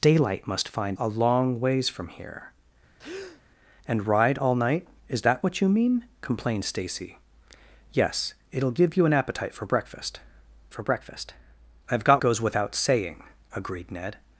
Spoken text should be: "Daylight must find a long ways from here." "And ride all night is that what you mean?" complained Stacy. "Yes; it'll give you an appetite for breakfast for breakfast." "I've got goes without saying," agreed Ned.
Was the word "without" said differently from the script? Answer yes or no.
no